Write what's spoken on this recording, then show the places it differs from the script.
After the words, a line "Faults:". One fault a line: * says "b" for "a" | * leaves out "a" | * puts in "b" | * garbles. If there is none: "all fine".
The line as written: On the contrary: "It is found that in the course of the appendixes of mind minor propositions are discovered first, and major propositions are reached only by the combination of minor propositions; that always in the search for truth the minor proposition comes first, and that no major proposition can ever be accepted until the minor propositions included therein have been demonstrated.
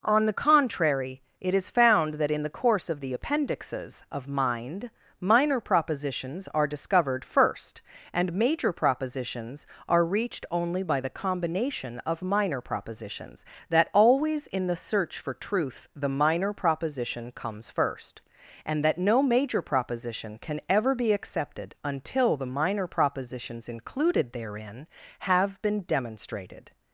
On the contrary: "It is found that in the course of the appendixes of mind minor propositions are discovered first, and major propositions are reached only by the combination of minor propositions; that always in the search for truth the minor proposition comes first, and that no major proposition can ever be accepted until the minor propositions included therein have been demonstrated.
Faults:
all fine